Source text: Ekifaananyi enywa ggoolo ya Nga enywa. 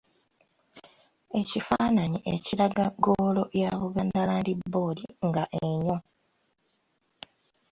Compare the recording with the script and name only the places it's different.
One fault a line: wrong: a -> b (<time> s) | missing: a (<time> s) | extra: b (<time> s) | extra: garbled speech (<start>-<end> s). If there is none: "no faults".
wrong: enywa -> ekiraga (2.3 s)
extra: Buganda Land Board (3.8 s)